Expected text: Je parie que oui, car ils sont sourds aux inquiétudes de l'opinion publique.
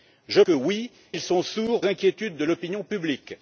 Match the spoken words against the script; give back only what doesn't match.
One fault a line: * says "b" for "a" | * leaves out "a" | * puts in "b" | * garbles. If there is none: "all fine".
* leaves out "parie"
* leaves out "car"
* leaves out "aux"